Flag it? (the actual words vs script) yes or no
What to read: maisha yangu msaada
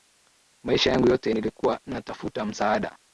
yes